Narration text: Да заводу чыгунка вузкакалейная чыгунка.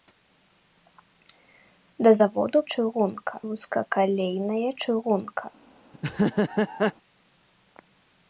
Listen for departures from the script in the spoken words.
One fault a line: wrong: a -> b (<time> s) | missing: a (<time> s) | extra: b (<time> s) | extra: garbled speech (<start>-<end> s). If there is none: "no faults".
no faults